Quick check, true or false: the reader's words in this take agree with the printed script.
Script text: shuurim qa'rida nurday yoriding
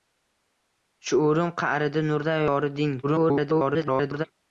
false